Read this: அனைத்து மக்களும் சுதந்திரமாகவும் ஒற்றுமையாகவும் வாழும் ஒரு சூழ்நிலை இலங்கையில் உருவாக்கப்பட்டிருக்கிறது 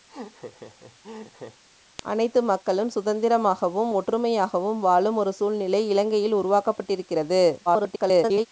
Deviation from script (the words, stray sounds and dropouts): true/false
true